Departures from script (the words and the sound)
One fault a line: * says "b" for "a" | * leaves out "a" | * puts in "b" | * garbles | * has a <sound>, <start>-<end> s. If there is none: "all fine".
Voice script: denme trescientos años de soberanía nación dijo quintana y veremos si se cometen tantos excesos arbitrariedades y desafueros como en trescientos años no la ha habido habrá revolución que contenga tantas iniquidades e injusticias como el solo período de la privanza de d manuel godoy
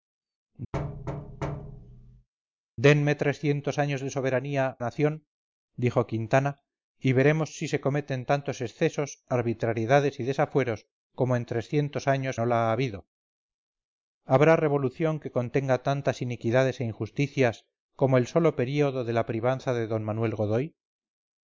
* has a thud, 0.7-2.3 s